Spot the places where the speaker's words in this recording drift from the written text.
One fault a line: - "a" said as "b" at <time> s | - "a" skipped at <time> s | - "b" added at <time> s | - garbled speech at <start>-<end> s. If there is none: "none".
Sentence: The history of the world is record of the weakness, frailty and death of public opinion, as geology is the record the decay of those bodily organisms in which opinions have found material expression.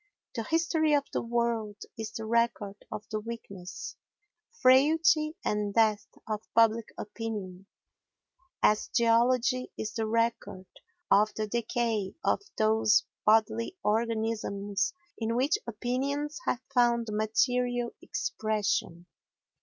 - "the" added at 2.1 s
- "of" added at 11.1 s